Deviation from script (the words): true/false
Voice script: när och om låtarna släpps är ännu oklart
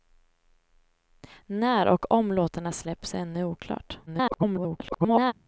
true